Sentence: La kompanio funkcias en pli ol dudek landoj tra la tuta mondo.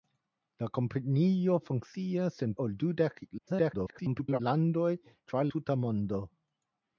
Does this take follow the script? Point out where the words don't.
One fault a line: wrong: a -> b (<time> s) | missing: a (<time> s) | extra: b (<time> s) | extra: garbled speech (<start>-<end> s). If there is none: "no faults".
missing: pli (2.6 s)
extra: garbled speech (3.4-4.4 s)
missing: la (5.5 s)